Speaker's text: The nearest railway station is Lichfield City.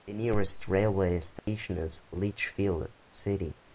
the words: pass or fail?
pass